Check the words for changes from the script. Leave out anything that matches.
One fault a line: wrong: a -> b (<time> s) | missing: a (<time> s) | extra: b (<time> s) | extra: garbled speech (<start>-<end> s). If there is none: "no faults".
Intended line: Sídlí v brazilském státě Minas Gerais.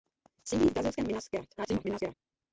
missing: státě (1.1 s)
extra: garbled speech (1.6-2.1 s)